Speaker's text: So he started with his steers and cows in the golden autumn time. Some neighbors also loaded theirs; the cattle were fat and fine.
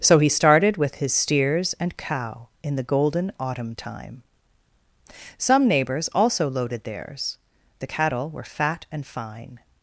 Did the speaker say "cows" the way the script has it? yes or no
no